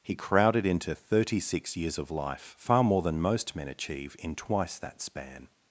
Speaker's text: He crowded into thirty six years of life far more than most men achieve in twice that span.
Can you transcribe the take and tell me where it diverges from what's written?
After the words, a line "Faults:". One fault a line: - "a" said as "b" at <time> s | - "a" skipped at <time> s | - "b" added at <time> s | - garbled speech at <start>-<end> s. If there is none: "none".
He crowded into thirty six years of life far more than most men achieve in twice that span.
Faults:
none